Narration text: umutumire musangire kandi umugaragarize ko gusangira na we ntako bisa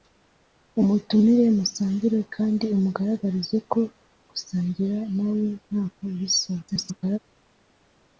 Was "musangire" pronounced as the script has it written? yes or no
yes